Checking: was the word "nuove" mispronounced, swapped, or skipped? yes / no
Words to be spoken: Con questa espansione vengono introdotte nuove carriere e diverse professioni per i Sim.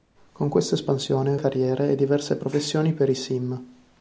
yes